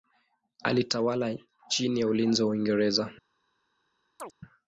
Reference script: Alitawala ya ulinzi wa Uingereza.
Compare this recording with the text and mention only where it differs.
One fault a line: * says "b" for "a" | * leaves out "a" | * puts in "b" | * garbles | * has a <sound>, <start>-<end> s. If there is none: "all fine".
* puts in "chini"
* has a chirp, 4.2-4.3 s